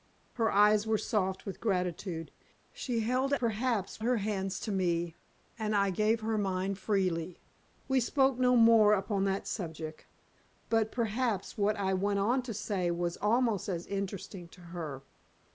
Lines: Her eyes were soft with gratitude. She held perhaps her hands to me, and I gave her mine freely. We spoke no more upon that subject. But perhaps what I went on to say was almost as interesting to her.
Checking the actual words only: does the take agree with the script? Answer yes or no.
yes